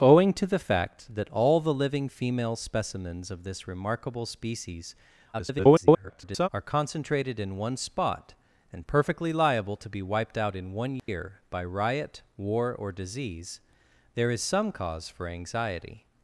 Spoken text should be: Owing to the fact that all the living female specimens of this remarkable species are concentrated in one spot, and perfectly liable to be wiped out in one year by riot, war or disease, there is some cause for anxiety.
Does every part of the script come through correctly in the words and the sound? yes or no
no